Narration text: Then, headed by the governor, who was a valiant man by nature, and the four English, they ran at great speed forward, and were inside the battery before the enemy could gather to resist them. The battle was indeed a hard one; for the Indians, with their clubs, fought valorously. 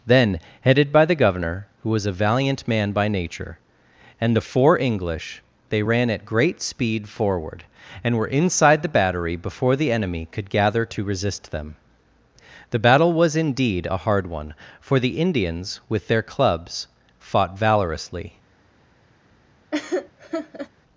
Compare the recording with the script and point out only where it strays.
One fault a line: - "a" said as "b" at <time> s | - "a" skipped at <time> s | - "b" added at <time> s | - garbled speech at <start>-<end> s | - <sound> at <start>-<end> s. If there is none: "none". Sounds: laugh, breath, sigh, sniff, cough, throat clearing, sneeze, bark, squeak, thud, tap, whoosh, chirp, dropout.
- laugh at 19.7-20.7 s